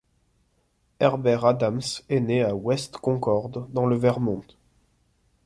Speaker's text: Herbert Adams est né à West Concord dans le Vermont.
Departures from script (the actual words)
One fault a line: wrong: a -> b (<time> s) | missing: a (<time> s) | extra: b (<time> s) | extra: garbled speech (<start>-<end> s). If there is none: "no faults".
no faults